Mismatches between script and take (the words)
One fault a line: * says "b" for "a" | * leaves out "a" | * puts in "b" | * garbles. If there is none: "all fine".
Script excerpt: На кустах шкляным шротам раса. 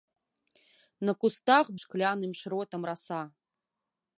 all fine